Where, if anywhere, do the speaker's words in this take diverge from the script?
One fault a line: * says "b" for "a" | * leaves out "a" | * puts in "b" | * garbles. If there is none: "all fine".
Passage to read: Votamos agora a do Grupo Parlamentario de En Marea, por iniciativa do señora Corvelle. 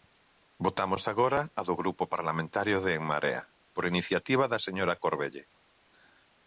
* says "da" for "do"